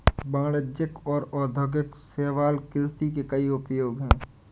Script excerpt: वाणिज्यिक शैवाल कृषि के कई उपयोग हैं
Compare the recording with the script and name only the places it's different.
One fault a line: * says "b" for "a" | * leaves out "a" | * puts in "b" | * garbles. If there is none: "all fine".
* puts in "और औद्योगिक"